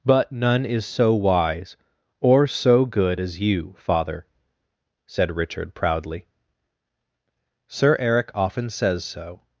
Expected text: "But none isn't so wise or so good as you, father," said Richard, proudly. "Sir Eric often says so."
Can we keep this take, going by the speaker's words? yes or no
no